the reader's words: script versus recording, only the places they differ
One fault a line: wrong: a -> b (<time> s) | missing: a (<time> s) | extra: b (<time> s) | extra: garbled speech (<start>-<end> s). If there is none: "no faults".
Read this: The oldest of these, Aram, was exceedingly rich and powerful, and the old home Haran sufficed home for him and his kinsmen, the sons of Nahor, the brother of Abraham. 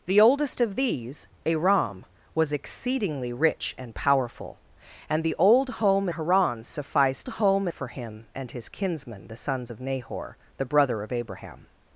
no faults